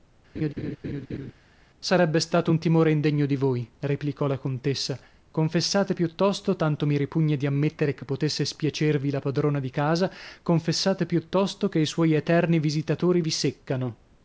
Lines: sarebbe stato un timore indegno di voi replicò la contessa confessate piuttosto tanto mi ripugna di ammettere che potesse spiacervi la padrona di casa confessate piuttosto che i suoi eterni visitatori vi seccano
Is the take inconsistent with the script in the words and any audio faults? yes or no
yes